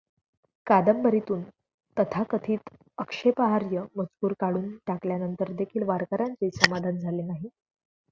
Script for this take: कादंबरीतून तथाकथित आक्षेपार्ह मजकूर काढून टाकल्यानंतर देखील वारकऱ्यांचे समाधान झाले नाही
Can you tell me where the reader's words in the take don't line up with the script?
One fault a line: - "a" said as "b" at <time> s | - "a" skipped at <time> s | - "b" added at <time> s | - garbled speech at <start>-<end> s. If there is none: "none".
none